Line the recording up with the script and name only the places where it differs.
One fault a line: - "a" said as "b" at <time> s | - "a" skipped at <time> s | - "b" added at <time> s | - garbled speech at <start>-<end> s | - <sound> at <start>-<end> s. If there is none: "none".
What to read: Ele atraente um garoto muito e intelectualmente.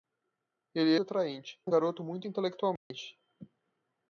- dropout at 2.8-2.9 s